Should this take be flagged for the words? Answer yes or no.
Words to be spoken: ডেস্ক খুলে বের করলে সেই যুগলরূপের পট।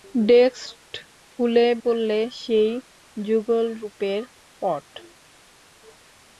yes